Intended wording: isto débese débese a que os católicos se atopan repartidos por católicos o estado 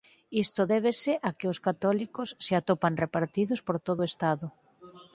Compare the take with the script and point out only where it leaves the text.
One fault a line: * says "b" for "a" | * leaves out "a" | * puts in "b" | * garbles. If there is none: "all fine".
* leaves out "débese"
* says "todo" for "católicos"